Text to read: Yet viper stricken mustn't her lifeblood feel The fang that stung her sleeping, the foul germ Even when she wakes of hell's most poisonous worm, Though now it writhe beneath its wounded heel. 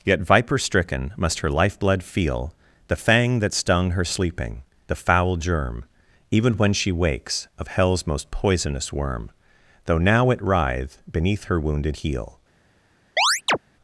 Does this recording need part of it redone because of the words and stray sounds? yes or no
yes